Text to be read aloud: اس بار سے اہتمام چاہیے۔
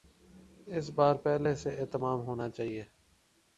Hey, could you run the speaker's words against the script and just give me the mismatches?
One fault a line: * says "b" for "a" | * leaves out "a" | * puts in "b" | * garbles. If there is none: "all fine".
* puts in "پہلے"
* puts in "ہونا"